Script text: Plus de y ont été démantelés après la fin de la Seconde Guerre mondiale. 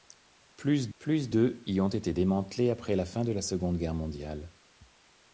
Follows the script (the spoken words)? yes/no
no